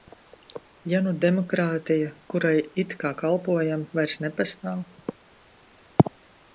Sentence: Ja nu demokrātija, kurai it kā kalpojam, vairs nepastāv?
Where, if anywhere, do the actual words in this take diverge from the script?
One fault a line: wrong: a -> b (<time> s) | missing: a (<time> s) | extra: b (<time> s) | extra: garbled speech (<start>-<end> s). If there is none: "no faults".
no faults